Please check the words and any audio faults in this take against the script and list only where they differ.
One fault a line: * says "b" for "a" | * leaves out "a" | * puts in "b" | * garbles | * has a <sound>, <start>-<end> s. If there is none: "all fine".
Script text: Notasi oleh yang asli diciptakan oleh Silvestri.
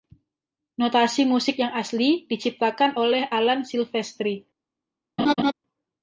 * says "musik" for "oleh"
* puts in "Alan"
* has a laugh, 5.2-5.5 s